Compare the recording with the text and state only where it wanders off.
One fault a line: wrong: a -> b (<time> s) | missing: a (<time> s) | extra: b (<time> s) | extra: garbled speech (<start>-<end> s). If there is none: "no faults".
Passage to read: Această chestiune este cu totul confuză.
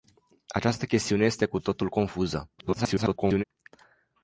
extra: garbled speech (2.6-3.4 s)